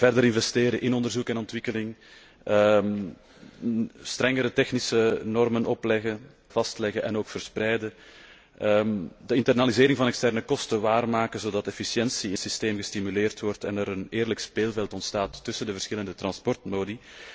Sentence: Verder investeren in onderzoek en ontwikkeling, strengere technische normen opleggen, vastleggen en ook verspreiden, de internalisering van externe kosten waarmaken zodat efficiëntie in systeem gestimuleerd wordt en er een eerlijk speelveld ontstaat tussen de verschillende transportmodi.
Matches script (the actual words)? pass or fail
pass